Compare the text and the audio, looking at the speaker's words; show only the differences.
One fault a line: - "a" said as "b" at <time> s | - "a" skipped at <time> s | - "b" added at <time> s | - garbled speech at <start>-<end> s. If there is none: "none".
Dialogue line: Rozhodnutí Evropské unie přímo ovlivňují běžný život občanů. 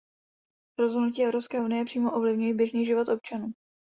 none